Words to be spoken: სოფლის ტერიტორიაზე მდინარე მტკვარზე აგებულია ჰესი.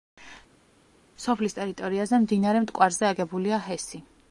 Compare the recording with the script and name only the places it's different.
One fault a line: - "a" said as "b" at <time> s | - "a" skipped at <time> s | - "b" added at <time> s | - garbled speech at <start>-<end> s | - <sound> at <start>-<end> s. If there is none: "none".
none